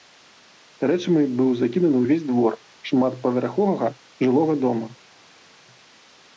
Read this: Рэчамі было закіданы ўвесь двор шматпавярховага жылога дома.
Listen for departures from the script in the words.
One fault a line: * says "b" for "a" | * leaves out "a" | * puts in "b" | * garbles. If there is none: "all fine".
* says "быў" for "было"